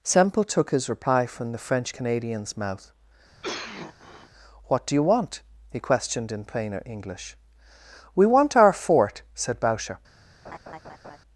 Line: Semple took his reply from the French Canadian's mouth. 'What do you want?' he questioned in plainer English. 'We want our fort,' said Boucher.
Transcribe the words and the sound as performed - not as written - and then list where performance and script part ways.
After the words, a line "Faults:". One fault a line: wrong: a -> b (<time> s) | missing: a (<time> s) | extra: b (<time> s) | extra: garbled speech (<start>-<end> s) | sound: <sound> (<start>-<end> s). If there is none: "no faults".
Semple took his reply from the French Canadian's mouth. 'What do you want?' he questioned in plainer English. 'We want our fort,' said Boucher.
Faults:
sound: cough (3.4-4.3 s)
sound: laugh (10.4-11.2 s)